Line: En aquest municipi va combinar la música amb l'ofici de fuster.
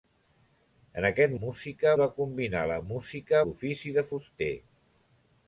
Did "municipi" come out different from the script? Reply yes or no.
yes